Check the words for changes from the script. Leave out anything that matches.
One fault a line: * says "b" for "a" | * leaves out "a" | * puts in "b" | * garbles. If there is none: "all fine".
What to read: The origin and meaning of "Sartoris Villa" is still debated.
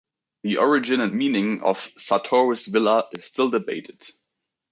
all fine